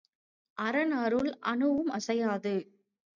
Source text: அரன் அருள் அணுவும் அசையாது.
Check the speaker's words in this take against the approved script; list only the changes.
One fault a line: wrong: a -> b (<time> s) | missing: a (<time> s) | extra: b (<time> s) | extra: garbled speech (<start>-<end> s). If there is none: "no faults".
no faults